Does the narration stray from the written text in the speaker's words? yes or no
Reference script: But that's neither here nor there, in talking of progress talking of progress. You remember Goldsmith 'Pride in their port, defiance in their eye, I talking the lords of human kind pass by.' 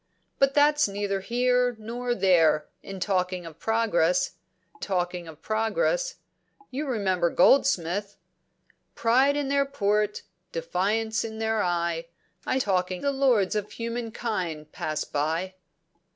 no